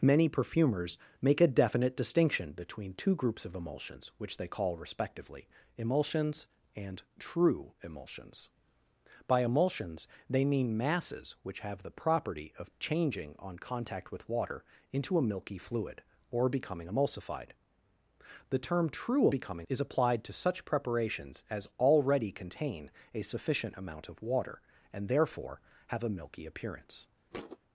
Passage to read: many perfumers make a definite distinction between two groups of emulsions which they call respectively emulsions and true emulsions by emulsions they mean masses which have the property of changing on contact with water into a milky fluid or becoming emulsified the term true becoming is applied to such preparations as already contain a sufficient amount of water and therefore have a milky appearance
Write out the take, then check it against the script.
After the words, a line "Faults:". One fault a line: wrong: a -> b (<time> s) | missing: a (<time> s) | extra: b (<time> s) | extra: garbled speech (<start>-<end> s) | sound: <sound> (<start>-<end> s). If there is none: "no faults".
many perfumers make a definite distinction between two groups of emulsions which they call respectively emulsions and true emulsions by emulsions they mean masses which have the property of changing on contact with water into a milky fluid or becoming emulsified the term true becoming is applied to such preparations as already contain a sufficient amount of water and therefore have a milky appearance
Faults:
sound: thud (27.3-27.6 s)